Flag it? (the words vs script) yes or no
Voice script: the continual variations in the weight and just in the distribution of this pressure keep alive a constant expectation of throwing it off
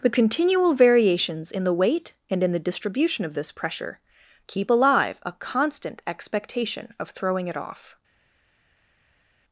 yes